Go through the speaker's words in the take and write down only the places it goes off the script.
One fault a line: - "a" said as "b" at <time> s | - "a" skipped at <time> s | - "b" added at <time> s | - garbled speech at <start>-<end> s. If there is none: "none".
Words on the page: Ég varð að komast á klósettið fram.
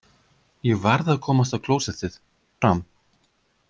none